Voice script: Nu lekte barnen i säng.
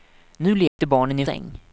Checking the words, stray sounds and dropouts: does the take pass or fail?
fail